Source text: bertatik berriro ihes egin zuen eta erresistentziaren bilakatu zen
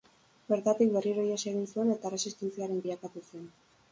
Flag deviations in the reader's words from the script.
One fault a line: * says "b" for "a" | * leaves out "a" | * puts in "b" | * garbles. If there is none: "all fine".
all fine